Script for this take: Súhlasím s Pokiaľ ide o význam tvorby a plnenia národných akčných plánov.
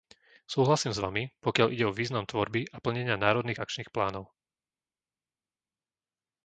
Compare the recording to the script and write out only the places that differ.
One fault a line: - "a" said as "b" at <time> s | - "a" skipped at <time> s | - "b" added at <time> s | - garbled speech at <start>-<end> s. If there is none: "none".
- "Vami" added at 1.0 s